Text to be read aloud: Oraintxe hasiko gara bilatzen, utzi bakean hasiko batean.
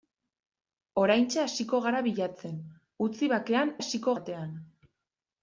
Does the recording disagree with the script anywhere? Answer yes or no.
no